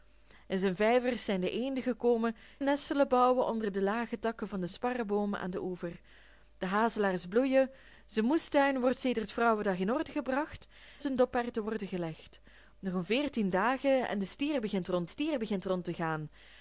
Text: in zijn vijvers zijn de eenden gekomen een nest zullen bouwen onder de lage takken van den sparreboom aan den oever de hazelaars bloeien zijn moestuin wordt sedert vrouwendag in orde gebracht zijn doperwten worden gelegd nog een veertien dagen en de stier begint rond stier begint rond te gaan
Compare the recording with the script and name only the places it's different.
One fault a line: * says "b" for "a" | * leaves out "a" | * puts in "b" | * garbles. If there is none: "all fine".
all fine